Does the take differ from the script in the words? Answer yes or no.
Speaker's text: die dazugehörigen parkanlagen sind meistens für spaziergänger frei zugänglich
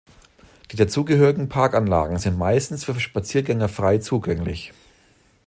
no